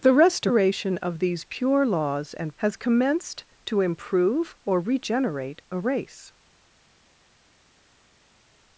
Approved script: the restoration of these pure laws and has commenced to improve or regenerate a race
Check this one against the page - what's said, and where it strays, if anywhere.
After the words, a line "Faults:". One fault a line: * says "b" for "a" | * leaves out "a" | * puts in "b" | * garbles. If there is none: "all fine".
the restoration of these pure laws and has commenced to improve or regenerate a race
Faults:
all fine